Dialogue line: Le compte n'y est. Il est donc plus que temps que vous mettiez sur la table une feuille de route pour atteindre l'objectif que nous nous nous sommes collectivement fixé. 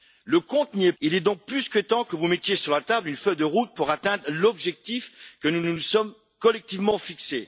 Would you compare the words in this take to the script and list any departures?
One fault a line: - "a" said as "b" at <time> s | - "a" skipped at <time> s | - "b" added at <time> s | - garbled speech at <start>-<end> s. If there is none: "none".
none